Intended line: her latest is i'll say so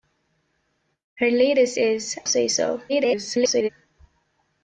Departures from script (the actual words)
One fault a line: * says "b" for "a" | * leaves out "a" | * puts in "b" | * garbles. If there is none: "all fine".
* leaves out "i'll"
* garbles